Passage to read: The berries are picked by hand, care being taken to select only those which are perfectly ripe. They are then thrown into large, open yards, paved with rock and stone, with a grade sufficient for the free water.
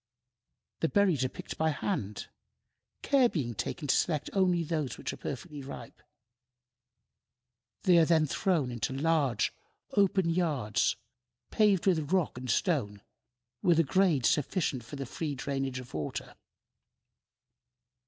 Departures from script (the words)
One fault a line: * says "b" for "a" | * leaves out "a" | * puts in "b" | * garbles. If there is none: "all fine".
* puts in "drainage of"